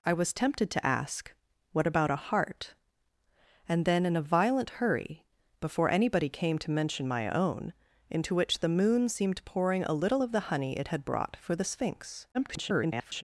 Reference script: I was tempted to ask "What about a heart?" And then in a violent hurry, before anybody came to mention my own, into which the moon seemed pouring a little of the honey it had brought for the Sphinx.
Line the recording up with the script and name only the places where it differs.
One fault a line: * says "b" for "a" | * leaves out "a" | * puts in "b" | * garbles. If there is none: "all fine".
* garbles